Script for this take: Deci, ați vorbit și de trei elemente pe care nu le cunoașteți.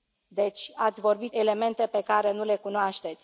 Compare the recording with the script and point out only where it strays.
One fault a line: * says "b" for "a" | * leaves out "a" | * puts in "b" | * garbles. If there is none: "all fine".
* leaves out "și de trei"